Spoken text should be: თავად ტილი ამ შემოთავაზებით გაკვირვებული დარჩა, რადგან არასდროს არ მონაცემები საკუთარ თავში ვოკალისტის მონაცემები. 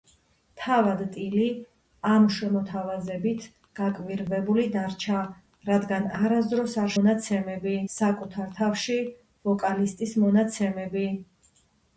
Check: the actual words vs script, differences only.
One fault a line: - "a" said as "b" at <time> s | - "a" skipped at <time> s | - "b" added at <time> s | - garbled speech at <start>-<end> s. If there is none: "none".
none